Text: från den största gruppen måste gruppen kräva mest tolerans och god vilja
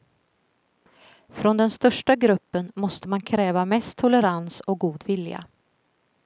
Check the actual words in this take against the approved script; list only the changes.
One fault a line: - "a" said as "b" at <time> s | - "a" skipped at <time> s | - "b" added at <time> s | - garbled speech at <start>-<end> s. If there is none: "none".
- "gruppen" said as "man" at 3.1 s